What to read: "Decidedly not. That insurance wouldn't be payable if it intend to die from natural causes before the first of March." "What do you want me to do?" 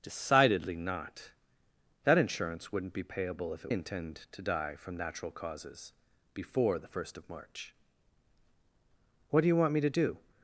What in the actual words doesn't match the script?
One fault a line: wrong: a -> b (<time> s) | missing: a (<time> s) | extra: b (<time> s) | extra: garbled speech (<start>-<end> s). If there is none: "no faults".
no faults